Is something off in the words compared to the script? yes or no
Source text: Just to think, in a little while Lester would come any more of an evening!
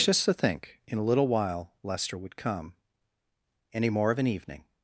no